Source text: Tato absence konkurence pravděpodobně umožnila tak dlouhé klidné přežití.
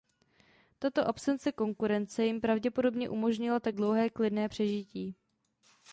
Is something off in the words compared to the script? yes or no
yes